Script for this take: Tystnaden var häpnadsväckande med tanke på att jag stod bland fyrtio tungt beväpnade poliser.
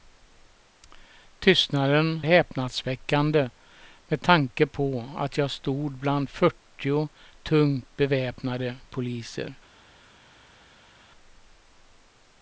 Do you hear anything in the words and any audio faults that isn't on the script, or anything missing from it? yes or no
yes